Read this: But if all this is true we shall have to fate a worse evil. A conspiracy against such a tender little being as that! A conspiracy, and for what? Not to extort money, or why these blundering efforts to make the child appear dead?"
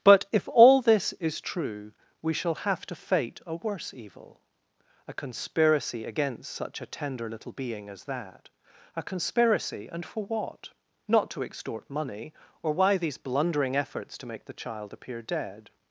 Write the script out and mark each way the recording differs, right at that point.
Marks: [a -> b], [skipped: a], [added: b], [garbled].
But if all this is true we shall have to fate a worse evil. A conspiracy against such a tender little being as that! A conspiracy, and for what? Not to extort money, or why these blundering efforts to make the child appear dead?"